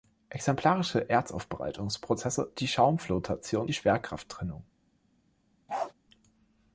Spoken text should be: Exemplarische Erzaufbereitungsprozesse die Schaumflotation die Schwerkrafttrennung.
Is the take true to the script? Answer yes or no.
yes